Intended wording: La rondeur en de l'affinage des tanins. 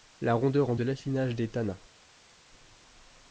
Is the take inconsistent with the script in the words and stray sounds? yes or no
no